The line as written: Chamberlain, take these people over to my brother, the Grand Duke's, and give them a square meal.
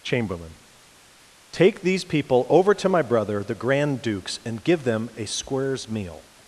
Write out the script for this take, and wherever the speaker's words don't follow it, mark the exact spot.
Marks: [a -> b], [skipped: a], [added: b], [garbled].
Chamberlain, take these people over to my brother, the Grand Duke's, and give them a [square -> squares] meal.